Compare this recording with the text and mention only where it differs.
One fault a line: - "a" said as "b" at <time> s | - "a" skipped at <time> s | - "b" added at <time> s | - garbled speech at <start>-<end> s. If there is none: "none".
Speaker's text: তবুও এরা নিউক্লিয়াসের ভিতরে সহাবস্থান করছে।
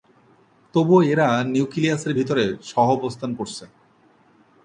none